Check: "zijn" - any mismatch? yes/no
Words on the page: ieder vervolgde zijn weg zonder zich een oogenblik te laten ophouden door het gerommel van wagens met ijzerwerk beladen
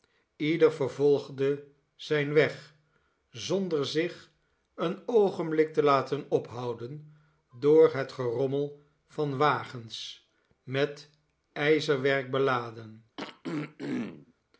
no